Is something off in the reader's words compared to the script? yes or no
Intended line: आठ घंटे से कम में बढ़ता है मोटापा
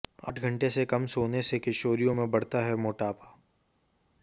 yes